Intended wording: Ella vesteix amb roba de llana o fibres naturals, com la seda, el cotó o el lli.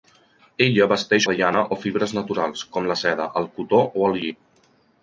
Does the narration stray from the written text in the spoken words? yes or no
yes